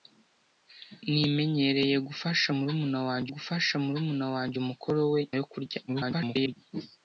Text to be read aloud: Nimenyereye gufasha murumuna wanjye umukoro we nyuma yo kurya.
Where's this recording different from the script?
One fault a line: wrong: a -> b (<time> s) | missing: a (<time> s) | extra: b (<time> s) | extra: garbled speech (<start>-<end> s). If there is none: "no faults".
extra: gufasha murumuna wanjye (3.3 s)
missing: nyuma (5.2 s)
extra: garbled speech (5.9-6.6 s)